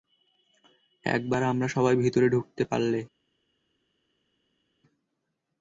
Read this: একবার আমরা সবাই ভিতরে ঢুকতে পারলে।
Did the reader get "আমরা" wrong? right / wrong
right